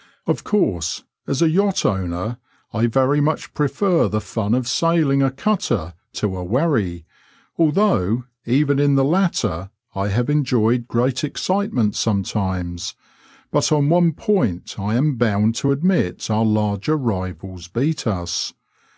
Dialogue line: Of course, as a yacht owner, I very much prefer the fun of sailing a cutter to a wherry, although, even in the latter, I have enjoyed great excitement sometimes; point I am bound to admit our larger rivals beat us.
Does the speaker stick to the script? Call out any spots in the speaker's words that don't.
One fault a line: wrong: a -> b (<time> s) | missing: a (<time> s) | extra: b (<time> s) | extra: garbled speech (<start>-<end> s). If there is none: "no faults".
extra: but on one (13.5 s)